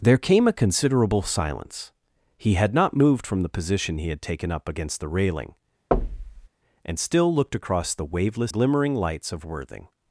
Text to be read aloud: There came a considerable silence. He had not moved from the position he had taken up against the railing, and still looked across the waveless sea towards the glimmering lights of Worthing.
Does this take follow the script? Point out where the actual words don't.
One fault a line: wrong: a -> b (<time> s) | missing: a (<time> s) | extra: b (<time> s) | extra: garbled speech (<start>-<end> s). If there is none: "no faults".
missing: sea towards the (8.5 s)